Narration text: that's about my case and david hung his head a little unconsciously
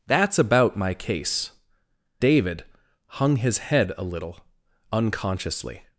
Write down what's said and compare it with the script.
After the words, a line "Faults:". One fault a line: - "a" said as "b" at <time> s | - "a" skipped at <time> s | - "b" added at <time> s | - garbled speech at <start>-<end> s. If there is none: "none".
that's about my case david hung his head a little unconsciously
Faults:
- "and" skipped at 1.5 s